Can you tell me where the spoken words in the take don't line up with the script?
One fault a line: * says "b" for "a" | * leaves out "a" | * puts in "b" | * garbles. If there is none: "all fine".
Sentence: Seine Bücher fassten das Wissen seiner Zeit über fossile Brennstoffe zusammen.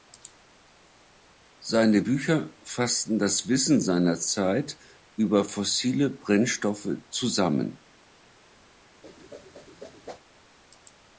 all fine